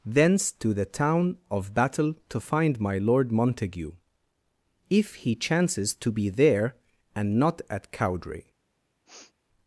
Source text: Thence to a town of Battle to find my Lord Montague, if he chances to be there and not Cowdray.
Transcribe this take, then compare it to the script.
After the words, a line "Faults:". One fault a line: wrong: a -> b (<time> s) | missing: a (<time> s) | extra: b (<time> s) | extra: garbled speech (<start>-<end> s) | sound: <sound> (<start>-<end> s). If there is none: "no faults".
Thence to the town of Battle to find my Lord Montague, if he chances to be there and not at Cowdray.
Faults:
wrong: a -> the (0.7 s)
extra: at (7.7 s)
sound: sniff (9.1-9.3 s)